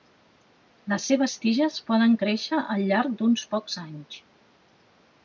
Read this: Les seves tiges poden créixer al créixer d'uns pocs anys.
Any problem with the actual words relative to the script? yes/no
yes